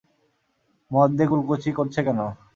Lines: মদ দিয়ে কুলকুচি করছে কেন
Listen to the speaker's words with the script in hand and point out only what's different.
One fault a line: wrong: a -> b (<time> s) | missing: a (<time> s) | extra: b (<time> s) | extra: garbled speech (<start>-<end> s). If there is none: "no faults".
no faults